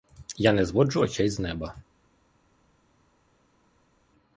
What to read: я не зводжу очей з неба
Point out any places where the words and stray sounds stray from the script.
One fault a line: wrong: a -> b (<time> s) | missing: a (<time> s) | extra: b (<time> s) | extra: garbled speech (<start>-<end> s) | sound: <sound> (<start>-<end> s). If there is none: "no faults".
no faults